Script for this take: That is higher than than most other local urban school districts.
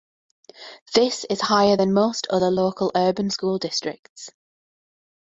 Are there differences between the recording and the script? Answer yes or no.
yes